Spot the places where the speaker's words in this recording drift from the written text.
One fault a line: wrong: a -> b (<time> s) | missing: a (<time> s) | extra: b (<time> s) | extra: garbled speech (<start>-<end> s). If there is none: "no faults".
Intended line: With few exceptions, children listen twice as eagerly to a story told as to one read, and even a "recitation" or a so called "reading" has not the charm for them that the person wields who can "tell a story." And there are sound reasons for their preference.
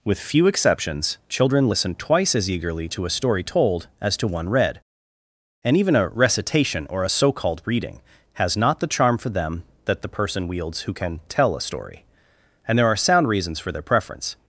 no faults